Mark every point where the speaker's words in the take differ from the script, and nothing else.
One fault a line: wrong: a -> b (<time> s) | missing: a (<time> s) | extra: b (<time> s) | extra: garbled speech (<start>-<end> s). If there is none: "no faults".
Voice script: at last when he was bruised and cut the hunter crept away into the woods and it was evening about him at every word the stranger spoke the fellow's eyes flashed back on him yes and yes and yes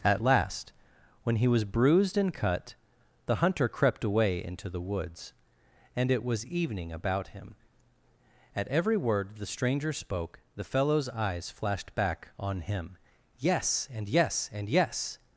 no faults